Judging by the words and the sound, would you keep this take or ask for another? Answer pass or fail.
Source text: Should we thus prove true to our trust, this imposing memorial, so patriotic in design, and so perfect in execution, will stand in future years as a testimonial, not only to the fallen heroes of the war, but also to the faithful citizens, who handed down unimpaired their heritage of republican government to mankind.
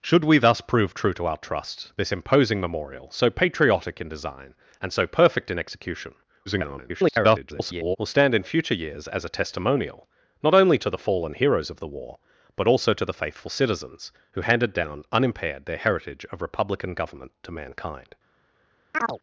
fail